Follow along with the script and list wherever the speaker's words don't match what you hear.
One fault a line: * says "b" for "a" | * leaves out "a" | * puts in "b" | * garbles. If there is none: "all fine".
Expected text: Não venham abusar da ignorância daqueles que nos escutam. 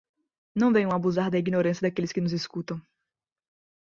all fine